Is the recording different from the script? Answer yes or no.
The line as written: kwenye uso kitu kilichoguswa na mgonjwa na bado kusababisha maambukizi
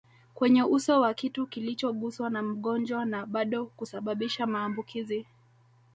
yes